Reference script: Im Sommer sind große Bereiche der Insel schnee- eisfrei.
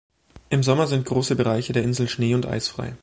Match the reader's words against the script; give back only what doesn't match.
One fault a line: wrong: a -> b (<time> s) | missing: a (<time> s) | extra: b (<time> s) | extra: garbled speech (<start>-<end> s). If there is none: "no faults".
extra: und (2.3 s)